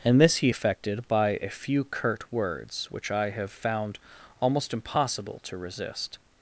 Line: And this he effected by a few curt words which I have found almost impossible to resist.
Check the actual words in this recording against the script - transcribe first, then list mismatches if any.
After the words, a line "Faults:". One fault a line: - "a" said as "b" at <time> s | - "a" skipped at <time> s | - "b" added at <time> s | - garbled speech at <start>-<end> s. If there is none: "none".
And this he effected by a few curt words which I have found almost impossible to resist.
Faults:
none